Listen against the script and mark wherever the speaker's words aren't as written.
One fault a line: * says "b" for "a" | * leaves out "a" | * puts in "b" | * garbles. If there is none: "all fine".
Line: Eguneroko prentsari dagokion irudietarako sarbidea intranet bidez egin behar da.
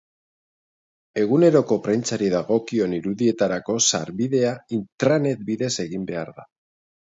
all fine